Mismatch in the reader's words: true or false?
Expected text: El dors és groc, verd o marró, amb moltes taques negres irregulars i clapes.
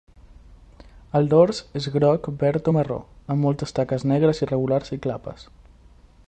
false